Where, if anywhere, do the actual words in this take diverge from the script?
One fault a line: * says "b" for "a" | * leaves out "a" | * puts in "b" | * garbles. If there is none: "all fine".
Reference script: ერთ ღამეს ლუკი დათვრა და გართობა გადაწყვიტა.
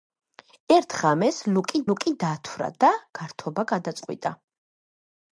* puts in "ლუკი"